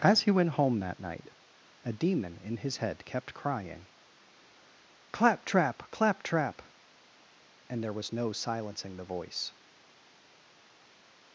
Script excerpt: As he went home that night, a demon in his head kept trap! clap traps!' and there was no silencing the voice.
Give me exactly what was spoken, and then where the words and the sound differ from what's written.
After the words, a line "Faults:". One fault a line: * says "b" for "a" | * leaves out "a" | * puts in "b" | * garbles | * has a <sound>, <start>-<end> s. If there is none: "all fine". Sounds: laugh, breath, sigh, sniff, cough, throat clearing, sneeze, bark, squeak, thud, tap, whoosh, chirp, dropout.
As he went home that night, a demon in his head kept crying 'Clap trap! clap trap!' and there was no silencing the voice.
Faults:
* puts in "crying Clap"
* says "trap" for "traps"